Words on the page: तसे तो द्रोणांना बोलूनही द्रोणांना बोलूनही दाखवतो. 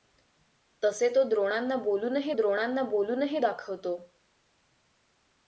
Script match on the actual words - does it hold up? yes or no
yes